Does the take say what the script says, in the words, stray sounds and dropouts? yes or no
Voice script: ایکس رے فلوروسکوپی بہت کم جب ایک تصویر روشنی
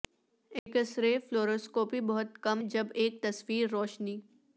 no